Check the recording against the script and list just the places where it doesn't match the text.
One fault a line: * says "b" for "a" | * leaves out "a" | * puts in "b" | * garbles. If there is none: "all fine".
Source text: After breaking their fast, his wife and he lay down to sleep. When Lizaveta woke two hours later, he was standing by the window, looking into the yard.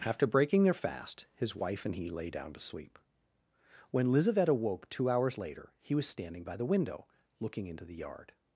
all fine